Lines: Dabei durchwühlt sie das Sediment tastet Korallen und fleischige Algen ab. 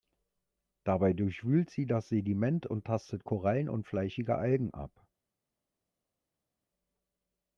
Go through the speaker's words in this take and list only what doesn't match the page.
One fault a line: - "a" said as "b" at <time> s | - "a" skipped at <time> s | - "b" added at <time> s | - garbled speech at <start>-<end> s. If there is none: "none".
- "und" added at 2.6 s